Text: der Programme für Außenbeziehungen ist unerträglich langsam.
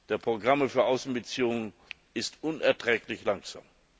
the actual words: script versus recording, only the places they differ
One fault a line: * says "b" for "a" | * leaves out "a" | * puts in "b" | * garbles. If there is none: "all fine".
all fine